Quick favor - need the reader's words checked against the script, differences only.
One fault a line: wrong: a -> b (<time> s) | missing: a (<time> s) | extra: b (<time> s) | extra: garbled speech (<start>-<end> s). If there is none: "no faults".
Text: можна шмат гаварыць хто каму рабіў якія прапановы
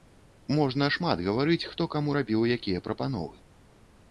no faults